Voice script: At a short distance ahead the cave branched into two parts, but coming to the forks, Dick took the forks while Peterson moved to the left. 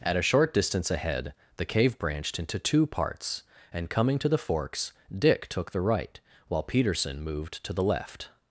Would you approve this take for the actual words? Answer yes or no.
no